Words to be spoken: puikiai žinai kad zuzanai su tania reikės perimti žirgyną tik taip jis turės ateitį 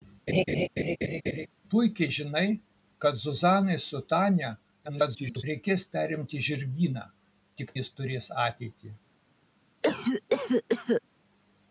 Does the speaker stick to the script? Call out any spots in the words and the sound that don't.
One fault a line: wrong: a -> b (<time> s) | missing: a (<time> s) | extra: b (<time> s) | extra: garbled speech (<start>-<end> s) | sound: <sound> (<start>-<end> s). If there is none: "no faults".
sound: laugh (0.3-1.5 s)
extra: garbled speech (4.9-5.4 s)
missing: taip (7.7 s)
sound: cough (9.8-11.0 s)